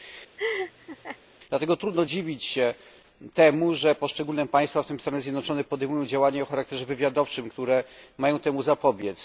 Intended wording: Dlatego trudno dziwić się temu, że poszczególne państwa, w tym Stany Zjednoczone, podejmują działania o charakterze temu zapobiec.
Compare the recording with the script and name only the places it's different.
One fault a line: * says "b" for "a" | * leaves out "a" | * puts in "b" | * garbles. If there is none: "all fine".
* puts in "wywiadowczym które mają"